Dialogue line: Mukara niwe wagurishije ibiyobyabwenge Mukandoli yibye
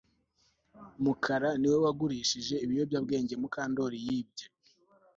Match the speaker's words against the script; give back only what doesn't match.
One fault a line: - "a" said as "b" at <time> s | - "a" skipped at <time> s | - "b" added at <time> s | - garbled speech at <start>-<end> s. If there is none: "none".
none